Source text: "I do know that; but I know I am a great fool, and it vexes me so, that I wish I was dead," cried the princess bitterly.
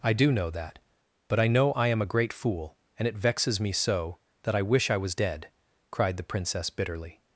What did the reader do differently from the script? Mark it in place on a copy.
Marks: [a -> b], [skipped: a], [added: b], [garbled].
"I do know that; but I know I am a great fool, and it vexes me so, that I wish I was dead," cried the princess bitterly.